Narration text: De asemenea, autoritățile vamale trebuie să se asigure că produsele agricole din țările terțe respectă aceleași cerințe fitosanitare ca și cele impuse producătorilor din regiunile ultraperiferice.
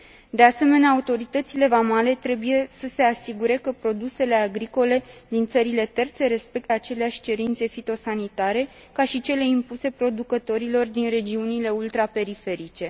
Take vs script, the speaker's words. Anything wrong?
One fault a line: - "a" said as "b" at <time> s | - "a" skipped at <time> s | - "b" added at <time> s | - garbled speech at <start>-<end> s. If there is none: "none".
none